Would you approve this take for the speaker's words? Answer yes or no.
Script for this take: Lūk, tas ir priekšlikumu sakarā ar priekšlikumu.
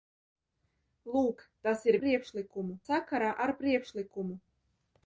yes